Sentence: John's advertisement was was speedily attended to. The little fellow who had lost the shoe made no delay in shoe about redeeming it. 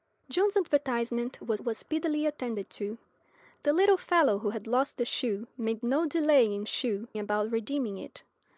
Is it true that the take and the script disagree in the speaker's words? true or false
false